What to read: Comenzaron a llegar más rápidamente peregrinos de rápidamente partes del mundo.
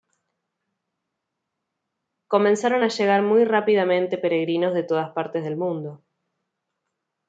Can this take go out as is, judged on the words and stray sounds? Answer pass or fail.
fail